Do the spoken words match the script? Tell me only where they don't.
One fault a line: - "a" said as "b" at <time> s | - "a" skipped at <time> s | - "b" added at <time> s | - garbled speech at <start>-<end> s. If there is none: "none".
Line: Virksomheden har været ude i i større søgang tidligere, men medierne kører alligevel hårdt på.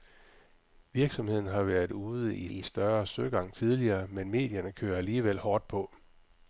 none